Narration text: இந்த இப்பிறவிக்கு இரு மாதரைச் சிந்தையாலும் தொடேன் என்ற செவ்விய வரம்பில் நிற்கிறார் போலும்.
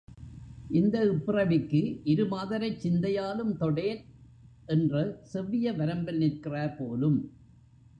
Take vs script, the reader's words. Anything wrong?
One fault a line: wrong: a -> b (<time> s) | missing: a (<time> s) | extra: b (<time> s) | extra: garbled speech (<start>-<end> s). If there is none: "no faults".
no faults